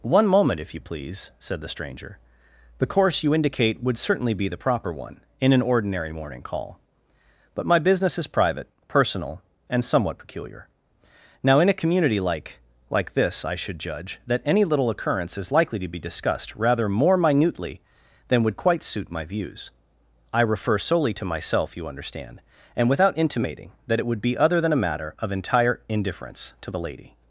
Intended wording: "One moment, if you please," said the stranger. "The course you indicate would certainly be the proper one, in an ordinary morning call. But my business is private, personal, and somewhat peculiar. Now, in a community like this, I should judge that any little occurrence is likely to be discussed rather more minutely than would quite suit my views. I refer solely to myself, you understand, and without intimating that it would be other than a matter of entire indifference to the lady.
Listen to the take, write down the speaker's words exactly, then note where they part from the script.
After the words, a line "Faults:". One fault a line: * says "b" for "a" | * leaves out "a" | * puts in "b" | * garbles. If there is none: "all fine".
"One moment, if you please," said the stranger. "The course you indicate would certainly be the proper one, in an ordinary morning call. But my business is private, personal, and somewhat peculiar. Now, in a community like like this, I should judge that any little occurrence is likely to be discussed rather more minutely than would quite suit my views. I refer solely to myself, you understand, and without intimating that it would be other than a matter of entire indifference to the lady.
Faults:
* puts in "like"